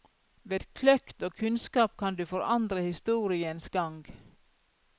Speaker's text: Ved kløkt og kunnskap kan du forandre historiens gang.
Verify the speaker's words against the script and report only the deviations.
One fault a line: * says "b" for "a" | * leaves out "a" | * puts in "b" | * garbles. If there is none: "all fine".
all fine